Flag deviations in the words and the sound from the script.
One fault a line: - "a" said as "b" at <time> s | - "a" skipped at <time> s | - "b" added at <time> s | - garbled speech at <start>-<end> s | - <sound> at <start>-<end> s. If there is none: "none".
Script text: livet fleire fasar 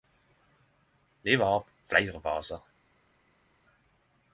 - "har" added at 1.5 s